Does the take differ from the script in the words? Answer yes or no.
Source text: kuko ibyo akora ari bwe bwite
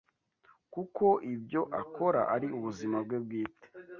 yes